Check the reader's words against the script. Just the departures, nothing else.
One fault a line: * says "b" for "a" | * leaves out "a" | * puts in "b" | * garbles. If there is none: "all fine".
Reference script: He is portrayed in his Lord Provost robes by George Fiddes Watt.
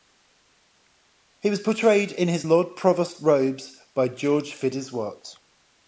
* says "was" for "is"